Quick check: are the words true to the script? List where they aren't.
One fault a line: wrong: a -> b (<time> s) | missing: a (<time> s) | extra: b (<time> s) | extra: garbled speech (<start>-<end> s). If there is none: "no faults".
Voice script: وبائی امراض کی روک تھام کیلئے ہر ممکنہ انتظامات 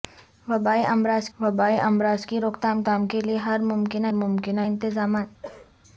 extra: وبائی امراض (1.4 s)
extra: تھام (2.8 s)
extra: ممکنہ (4.1 s)